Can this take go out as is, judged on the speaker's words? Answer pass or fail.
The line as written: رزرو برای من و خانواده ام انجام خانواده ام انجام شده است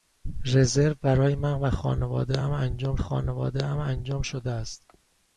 pass